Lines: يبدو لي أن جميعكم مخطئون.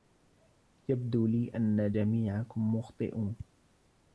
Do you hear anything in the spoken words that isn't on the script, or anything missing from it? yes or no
no